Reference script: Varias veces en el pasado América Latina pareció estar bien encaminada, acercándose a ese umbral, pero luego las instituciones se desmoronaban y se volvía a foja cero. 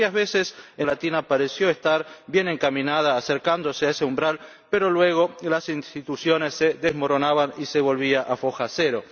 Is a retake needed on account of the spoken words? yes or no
yes